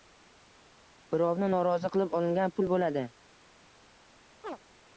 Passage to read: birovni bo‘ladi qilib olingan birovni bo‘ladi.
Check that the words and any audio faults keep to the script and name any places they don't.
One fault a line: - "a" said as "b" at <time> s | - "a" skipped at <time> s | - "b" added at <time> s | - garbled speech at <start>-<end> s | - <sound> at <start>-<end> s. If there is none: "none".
- "bo‘ladi" said as "norozi" at 1.5 s
- "birovni" said as "pul" at 2.6 s
- chirp at 4.4-4.6 s